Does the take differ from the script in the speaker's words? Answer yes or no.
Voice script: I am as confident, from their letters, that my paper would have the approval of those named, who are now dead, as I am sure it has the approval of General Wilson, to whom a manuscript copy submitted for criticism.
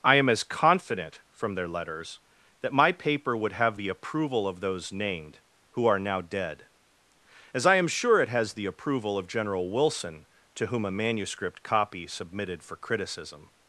no